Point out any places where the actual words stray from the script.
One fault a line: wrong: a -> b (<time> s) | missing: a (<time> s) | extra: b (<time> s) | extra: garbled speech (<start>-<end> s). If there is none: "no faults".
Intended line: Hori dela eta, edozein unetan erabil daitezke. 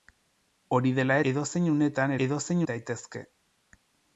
missing: eta (1.2 s)
wrong: erabil -> edozein (2.2 s)